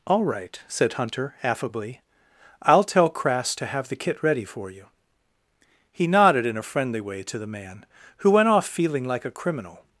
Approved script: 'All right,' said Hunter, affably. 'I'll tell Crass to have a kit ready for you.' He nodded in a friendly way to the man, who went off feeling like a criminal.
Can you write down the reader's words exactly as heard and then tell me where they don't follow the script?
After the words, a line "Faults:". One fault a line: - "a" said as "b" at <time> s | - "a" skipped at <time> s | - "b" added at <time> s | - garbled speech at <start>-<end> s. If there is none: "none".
'All right,' said Hunter, affably. 'I'll tell Crass to have the kit ready for you.' He nodded in a friendly way to the man, who went off feeling like a criminal.
Faults:
- "a" said as "the" at 3.9 s